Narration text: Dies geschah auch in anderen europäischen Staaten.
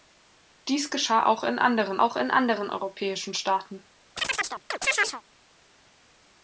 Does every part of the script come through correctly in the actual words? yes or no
no